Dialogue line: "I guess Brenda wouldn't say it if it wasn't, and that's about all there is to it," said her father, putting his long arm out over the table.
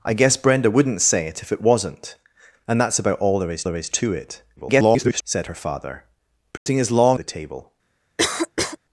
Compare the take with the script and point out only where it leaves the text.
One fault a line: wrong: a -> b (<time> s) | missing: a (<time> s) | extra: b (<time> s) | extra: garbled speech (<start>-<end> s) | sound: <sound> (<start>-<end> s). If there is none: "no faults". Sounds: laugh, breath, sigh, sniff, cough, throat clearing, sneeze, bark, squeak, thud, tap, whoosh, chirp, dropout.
extra: there is (3.6 s)
extra: garbled speech (4.6-5.2 s)
sound: dropout (6.6-6.7 s)
missing: arm out over (7.2 s)
sound: cough (8.2-8.8 s)